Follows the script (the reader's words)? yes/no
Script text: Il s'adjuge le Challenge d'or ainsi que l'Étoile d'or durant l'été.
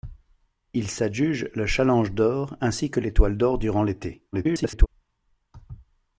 no